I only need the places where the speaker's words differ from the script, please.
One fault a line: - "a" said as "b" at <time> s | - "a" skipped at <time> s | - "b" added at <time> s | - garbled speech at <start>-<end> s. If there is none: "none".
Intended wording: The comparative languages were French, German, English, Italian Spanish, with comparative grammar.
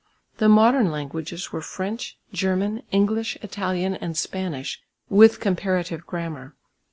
- "comparative" said as "modern" at 0.5 s
- "and" added at 4.0 s